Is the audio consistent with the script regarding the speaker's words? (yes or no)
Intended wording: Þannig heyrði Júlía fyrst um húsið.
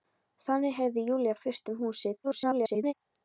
no